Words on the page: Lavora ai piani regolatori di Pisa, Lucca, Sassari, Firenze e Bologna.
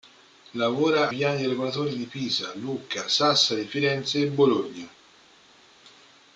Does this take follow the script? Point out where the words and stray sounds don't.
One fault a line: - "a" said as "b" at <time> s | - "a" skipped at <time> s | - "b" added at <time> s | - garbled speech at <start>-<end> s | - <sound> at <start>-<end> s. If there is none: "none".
- "ai" skipped at 1.1 s